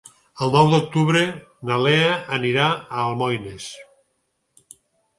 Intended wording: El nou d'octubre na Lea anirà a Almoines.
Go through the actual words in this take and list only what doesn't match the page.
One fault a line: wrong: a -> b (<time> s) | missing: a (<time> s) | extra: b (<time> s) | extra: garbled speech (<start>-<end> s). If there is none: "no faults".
no faults